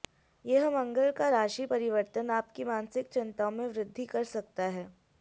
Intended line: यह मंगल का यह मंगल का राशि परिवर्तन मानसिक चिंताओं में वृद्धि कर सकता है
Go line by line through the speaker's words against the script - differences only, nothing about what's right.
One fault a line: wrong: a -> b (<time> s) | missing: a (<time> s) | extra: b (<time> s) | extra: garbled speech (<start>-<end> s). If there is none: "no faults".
missing: यह मंगल का (1.3 s)
extra: आपकी (2.3 s)